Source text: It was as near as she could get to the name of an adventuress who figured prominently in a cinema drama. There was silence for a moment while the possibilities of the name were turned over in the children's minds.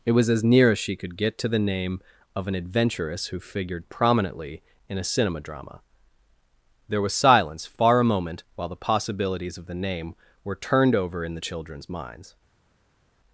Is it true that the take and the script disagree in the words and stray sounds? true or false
true